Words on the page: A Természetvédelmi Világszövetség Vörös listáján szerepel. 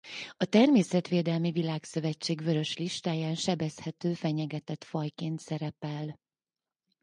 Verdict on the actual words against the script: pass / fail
fail